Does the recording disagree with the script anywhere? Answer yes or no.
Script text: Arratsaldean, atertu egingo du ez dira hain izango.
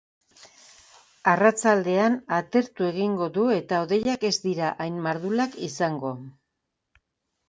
yes